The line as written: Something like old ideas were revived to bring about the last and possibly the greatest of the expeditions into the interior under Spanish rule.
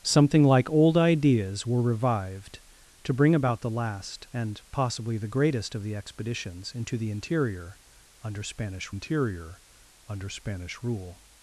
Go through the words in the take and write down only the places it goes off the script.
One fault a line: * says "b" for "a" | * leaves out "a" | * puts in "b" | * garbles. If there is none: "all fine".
* puts in "interior under Spanish"